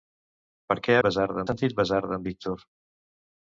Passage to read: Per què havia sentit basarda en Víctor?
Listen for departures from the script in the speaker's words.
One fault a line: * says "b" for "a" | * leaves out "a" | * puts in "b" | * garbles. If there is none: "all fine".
* says "basarda" for "havia"